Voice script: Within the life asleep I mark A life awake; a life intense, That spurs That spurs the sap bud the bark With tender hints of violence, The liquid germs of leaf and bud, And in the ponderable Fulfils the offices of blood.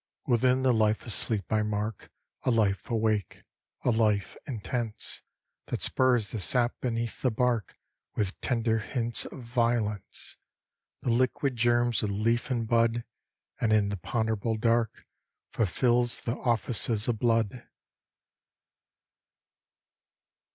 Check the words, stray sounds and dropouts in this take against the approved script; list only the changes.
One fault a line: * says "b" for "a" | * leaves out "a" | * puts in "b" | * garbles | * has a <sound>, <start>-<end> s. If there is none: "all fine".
* leaves out "That spurs"
* says "beneath" for "bud"
* puts in "dark"